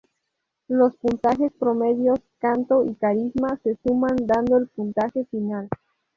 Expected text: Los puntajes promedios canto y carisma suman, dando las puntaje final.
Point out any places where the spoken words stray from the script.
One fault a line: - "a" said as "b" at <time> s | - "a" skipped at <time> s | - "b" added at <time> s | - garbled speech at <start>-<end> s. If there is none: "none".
- "se" added at 3.6 s
- "las" said as "el" at 4.6 s